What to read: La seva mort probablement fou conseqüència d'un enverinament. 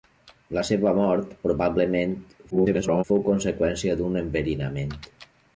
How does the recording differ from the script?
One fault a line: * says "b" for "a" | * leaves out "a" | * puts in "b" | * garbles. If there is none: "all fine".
* garbles